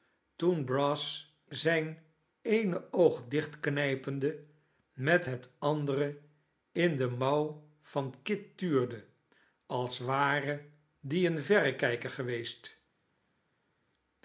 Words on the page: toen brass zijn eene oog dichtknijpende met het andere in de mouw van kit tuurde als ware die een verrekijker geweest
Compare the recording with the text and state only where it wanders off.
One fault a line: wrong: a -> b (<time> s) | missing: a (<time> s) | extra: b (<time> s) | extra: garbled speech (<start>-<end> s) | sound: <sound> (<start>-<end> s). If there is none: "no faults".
no faults